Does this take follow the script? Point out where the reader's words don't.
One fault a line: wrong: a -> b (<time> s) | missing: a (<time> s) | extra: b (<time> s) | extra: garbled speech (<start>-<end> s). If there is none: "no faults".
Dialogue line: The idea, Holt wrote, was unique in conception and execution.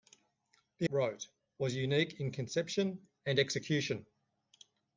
missing: idea Holt (0.9 s)